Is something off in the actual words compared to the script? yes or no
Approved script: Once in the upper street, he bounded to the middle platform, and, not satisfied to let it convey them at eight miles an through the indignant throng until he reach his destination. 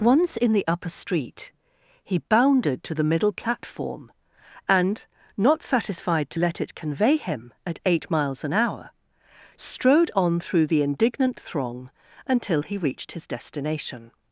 yes